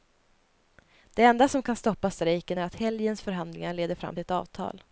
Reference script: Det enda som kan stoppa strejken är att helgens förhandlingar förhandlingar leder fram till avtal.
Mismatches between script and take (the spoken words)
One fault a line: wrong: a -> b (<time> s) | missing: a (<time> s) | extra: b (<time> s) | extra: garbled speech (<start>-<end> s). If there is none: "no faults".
missing: förhandlingar (3.7 s)
extra: ett (4.2 s)